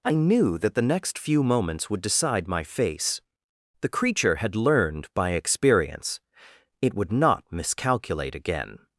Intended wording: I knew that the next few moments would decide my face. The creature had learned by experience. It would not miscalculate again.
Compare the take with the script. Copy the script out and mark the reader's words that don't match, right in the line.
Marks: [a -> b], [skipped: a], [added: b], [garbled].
I knew that the next few moments would decide my face. The creature had learned by experience. It would not miscalculate again.